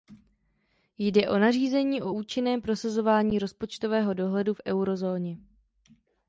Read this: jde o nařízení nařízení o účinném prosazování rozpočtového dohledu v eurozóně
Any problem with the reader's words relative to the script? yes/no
yes